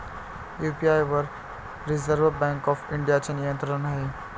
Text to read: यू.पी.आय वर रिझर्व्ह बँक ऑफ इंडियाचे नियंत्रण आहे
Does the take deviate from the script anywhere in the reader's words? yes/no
no